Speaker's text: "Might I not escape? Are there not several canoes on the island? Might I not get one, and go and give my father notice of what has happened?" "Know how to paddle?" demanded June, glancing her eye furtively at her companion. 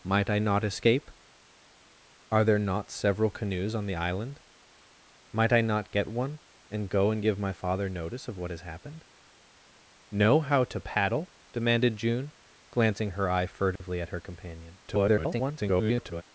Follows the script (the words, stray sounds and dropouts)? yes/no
no